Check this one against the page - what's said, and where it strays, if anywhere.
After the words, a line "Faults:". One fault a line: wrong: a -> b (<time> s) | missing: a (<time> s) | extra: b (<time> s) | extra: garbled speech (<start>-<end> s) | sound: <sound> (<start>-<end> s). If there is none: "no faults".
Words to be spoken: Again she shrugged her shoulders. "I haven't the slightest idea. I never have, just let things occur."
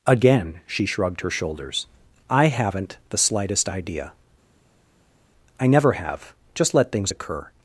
Again she shrugged her shoulders. "I haven't the slightest idea. I never have, just let things occur."
Faults:
no faults